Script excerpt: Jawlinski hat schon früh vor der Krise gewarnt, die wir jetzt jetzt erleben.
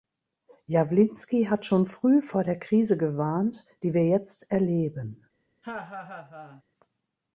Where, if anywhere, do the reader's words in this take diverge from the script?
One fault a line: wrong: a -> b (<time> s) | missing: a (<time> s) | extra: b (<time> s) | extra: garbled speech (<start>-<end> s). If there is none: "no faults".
missing: jetzt (4.5 s)